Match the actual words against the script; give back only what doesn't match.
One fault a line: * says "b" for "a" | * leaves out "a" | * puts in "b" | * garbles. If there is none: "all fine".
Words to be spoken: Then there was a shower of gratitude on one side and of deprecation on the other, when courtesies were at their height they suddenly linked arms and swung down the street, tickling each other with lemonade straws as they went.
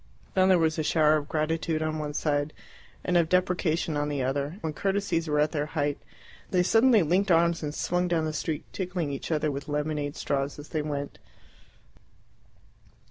all fine